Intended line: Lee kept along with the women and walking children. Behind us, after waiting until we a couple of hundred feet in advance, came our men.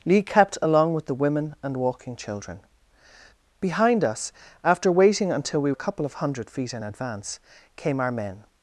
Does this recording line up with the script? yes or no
yes